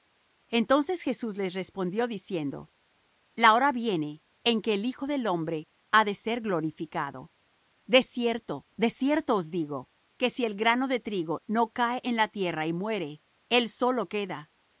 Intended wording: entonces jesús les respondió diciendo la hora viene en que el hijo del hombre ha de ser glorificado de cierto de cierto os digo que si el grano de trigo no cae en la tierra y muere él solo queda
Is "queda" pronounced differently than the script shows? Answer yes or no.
no